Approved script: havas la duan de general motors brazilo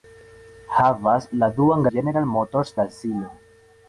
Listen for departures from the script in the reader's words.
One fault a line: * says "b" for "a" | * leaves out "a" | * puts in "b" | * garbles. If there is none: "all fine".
all fine